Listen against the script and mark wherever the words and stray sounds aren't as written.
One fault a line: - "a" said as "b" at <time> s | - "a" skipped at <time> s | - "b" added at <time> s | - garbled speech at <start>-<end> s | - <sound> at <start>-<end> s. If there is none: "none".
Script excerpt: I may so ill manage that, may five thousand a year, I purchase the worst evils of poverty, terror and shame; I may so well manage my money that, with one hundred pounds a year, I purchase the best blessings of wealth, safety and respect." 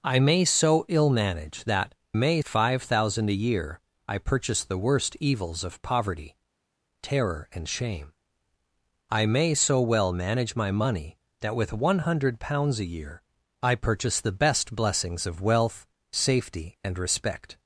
none